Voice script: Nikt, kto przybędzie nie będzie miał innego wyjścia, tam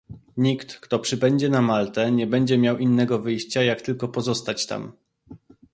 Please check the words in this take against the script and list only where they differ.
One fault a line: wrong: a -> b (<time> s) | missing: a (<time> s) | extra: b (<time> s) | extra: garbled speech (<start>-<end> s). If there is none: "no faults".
extra: na Maltę (1.5 s)
extra: jak tylko pozostać (3.6 s)